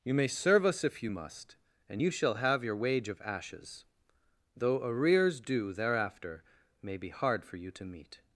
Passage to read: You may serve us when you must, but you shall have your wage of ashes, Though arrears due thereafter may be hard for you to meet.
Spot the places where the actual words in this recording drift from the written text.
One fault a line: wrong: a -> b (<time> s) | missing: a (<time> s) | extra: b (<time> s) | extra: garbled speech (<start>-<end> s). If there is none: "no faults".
wrong: when -> if (0.8 s)
wrong: but -> and (1.9 s)